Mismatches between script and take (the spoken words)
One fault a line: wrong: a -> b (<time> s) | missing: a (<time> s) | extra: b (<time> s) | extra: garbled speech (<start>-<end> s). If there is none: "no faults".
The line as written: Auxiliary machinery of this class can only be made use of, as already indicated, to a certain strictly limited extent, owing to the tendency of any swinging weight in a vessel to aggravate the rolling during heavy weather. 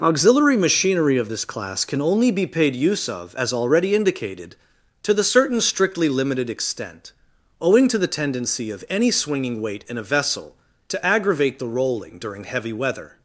wrong: made -> paid (2.5 s)
wrong: a -> the (5.1 s)